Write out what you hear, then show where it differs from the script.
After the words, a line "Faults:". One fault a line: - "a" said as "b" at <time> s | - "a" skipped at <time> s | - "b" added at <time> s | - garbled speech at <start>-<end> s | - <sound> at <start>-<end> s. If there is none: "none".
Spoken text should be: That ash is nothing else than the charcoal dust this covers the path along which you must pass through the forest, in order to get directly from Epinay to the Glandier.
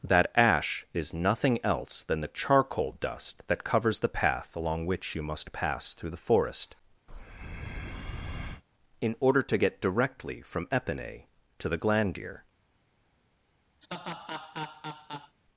That ash is nothing else than the charcoal dust that covers the path along which you must pass through the forest, in order to get directly from Epinay to the Glandier.
Faults:
- "this" said as "that" at 3.5 s
- breath at 7.1-8.6 s
- laugh at 13.8-15.4 s